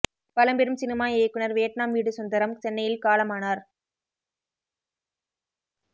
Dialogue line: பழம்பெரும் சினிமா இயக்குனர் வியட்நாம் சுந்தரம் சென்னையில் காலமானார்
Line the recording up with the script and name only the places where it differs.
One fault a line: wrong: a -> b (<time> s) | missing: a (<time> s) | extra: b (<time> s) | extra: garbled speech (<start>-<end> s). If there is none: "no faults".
extra: வீடு (2.0 s)